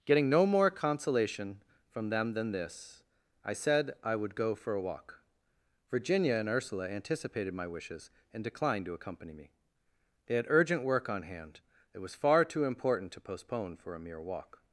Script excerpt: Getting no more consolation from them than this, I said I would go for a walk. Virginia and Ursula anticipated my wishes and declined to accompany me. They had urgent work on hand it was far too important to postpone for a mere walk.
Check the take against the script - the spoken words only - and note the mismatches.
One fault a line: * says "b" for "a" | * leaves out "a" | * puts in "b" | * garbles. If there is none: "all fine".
all fine